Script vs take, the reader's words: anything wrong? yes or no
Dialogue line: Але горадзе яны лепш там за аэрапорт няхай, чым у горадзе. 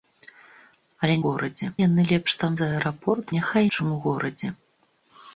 no